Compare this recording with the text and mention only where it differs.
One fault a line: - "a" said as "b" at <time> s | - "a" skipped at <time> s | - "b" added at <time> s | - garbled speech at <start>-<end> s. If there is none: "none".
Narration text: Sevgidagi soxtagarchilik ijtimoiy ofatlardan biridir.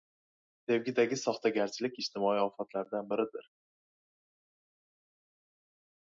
none